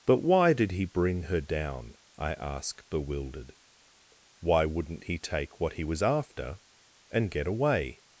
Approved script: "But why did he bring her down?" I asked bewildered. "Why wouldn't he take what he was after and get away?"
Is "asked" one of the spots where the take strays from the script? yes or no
yes